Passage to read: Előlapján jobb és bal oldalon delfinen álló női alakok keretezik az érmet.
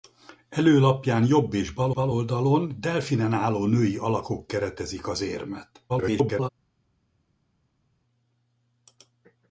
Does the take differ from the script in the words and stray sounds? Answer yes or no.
yes